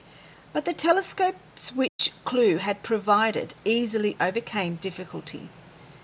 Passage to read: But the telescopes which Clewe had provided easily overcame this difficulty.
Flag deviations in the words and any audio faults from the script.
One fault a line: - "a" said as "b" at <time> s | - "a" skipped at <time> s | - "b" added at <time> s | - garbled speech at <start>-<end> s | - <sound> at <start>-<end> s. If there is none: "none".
- dropout at 1.9-2.0 s
- "this" skipped at 4.8 s